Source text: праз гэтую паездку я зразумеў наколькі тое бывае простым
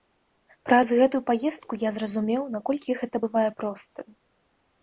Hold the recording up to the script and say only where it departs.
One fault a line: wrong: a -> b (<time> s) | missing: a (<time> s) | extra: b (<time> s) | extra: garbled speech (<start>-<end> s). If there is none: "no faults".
wrong: тое -> гэта (3.0 s)